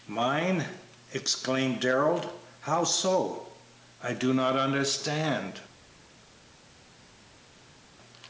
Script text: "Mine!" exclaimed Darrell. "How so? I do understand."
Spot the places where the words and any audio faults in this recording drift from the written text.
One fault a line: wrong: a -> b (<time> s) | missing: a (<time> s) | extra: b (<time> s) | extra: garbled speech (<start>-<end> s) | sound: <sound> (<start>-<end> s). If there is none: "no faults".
extra: not (4.3 s)